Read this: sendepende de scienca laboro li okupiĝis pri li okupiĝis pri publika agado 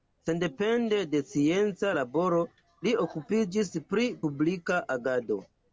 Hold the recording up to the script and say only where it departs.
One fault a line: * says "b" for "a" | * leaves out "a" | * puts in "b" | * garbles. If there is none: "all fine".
* leaves out "li okupiĝis pri"